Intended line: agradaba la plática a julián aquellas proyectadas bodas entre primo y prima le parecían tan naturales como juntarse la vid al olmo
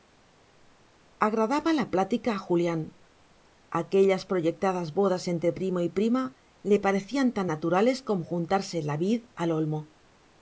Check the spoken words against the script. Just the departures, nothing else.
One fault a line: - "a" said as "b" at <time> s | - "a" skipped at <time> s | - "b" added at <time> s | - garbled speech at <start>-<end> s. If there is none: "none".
none